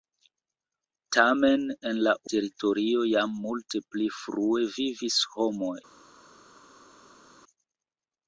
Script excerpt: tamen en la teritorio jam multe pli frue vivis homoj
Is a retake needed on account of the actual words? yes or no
no